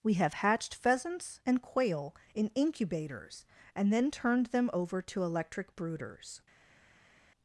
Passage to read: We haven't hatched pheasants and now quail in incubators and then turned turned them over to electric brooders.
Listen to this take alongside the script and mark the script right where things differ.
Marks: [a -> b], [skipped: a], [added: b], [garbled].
We [haven't -> have] hatched pheasants and [skipped: now] quail in incubators and then turned [skipped: turned] them over to electric brooders.